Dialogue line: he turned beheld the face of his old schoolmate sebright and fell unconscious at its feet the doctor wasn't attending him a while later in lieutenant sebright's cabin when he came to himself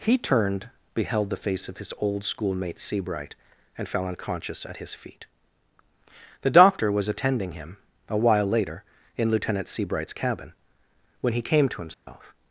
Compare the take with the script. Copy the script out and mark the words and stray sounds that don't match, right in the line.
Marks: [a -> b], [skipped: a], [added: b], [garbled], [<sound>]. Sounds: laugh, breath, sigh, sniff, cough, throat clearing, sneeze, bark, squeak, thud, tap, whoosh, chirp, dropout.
he turned beheld the face of his old schoolmate sebright and fell unconscious at [its -> his] feet the doctor [wasn't -> was] attending him a while later in lieutenant sebright's cabin when he came to himself [dropout]